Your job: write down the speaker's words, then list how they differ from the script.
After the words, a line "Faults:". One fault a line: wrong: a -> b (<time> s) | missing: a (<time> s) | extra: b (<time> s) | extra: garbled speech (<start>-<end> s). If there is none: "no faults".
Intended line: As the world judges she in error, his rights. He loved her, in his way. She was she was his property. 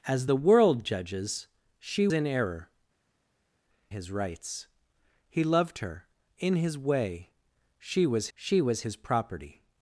As the world judges she in error, his rights. He loved her, in his way. She was she was his property.
Faults:
no faults